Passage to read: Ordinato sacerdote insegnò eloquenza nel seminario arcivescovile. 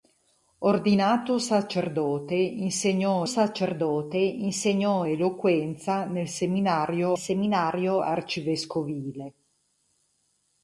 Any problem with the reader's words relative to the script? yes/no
yes